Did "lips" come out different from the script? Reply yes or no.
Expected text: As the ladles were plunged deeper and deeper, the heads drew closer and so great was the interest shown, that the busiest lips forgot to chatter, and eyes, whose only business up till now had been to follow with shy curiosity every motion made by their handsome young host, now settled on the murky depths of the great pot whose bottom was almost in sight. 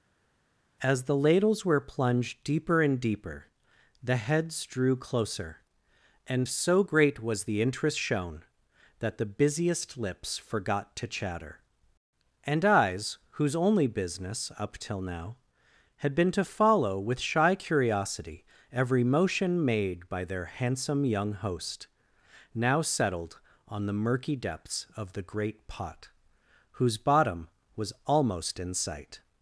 no